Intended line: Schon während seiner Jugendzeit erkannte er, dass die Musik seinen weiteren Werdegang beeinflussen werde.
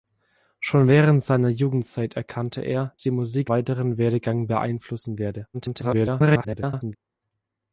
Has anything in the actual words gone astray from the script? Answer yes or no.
yes